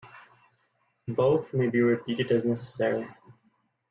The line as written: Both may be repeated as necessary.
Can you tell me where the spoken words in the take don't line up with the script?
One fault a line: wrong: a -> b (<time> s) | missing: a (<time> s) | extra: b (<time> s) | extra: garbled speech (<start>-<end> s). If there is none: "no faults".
no faults